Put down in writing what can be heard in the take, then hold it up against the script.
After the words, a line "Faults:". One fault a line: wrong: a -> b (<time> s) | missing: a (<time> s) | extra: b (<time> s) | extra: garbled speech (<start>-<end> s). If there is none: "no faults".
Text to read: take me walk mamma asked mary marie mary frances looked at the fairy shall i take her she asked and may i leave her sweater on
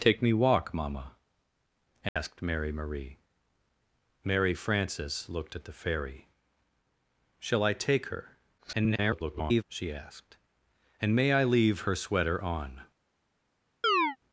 take me walk mamma asked mary marie mary frances looked at the fairy shall i take her [garbled] she asked and may i leave her sweater on
Faults:
extra: garbled speech (8.6-9.6 s)